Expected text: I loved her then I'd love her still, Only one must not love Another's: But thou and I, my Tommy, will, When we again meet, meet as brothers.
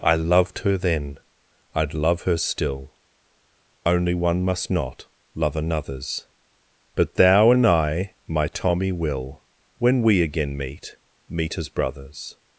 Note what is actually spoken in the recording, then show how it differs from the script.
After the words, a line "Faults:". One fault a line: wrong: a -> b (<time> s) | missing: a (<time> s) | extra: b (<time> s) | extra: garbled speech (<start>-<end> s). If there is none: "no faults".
I loved her then I'd love her still, Only one must not love Another's: But thou and I, my Tommy, will, When we again meet, meet as brothers.
Faults:
no faults